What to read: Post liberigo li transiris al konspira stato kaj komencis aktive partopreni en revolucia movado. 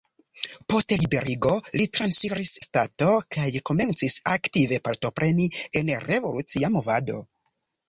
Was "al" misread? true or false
true